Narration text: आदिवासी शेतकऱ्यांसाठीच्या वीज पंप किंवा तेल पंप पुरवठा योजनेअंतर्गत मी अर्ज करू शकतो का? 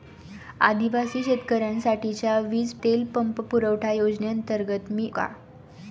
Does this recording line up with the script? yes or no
no